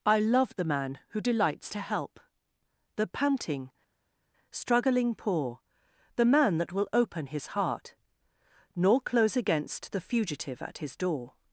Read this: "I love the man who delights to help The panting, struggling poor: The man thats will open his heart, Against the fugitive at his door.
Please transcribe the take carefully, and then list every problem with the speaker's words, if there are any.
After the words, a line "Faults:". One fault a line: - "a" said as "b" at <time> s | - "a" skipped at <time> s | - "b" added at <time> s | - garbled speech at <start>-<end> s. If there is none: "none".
"I love the man who delights to help The panting, struggling poor: The man that will open his heart, Nor close against the fugitive at his door.
Faults:
- "thats" said as "that" at 6.6 s
- "Nor close" added at 8.7 s